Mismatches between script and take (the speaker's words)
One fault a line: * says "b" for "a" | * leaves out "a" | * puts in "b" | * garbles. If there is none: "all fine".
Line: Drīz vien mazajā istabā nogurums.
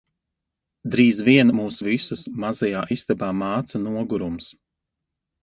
* puts in "mūs visus"
* puts in "māca"